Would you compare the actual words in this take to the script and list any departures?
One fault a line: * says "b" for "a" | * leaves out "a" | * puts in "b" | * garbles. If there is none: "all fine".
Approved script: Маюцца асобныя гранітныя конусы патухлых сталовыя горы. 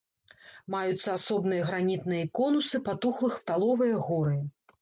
all fine